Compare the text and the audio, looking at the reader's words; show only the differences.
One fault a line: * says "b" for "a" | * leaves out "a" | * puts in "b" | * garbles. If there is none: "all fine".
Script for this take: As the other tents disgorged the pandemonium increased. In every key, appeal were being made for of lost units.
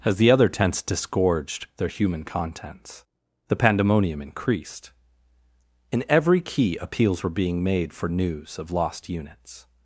* puts in "their human contents"
* says "appeals" for "appeal"
* puts in "news"